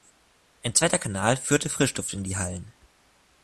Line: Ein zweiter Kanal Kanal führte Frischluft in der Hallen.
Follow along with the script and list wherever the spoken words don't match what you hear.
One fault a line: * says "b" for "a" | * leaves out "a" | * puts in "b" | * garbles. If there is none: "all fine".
* leaves out "Kanal"
* says "die" for "der"